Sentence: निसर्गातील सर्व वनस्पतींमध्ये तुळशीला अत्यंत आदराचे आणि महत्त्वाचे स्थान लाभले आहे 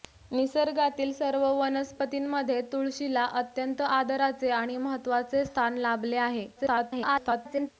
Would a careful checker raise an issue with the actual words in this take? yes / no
yes